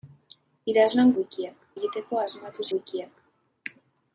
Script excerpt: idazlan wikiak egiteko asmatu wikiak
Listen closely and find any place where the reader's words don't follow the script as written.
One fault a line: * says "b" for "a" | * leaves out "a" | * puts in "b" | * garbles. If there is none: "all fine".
all fine